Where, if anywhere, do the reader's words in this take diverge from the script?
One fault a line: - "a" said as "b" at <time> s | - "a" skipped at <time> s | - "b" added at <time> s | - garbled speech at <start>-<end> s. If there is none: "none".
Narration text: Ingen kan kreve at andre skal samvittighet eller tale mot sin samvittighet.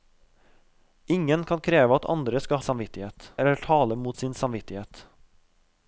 none